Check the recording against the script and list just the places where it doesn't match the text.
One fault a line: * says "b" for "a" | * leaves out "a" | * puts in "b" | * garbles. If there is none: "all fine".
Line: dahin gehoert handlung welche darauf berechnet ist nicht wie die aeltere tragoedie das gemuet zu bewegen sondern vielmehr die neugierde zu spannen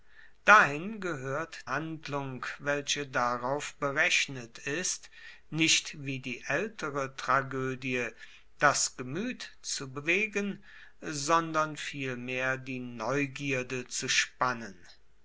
all fine